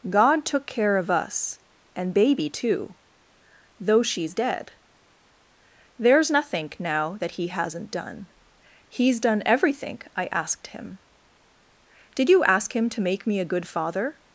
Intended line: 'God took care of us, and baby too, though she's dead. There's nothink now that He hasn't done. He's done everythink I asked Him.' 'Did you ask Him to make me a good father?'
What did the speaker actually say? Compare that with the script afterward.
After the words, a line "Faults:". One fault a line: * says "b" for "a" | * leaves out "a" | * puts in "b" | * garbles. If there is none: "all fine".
'God took care of us, and baby too, though she's dead. There's nothink now that He hasn't done. He's done everythink I asked Him.' 'Did you ask Him to make me a good father?'
Faults:
all fine